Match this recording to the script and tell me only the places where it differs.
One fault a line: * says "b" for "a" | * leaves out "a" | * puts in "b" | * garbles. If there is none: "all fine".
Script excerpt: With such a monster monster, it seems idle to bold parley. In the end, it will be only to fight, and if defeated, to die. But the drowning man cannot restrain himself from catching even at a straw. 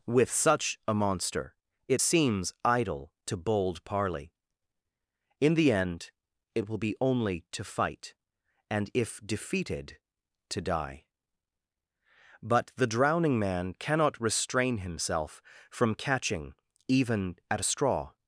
* leaves out "monster"